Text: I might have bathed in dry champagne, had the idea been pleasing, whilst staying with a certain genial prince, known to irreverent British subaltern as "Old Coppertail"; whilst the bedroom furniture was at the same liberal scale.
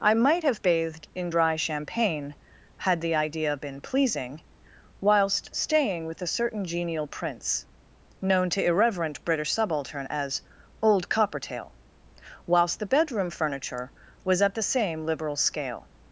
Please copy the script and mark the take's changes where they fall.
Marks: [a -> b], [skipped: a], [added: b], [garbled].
I might have bathed in dry champagne, had the idea been pleasing, whilst staying with a certain genial prince, known to irreverent British subaltern as "Old Coppertail"; whilst the bedroom furniture was at the same liberal scale.